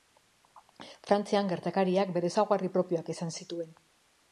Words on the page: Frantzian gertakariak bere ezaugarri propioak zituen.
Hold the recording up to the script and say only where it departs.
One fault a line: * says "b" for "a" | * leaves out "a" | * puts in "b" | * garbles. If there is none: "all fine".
* puts in "izan"